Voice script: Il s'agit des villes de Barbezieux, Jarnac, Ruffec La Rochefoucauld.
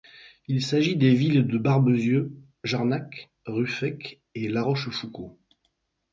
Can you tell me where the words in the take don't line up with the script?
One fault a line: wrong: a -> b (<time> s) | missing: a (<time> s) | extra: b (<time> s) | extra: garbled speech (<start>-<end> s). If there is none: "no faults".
extra: et (4.3 s)